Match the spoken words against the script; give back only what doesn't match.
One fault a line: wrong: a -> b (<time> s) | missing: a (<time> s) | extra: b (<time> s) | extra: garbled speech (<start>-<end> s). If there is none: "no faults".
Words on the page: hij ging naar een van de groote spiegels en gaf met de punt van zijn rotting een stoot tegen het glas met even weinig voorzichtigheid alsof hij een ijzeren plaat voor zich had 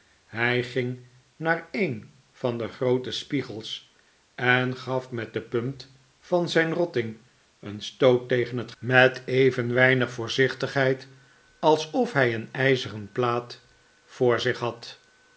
missing: glas (8.7 s)